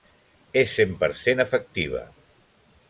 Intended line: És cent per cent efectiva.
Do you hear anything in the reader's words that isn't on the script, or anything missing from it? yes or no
no